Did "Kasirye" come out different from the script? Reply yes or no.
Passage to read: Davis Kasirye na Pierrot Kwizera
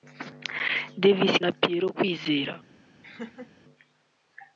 yes